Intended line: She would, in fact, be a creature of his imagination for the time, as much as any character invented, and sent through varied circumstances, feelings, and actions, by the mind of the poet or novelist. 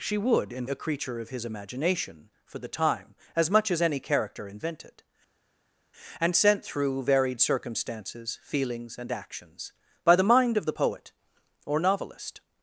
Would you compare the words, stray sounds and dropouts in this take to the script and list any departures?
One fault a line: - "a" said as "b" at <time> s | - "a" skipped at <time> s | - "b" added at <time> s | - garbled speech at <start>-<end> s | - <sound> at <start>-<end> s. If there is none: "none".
- "fact be" skipped at 0.7 s